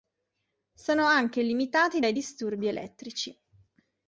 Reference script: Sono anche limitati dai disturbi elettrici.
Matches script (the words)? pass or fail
pass